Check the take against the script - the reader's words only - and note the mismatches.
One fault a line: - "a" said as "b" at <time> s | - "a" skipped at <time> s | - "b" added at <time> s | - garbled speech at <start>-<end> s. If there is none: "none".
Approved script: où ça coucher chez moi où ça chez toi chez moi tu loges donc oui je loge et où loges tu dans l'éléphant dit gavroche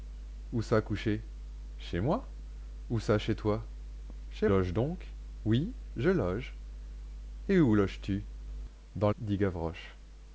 - "moi tu" skipped at 4.5 s
- "l'éléphant" skipped at 9.1 s